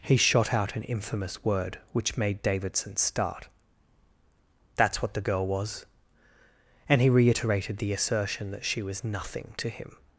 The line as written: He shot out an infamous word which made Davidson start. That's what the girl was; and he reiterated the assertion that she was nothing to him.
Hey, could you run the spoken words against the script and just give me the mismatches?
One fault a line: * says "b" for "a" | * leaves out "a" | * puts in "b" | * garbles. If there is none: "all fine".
all fine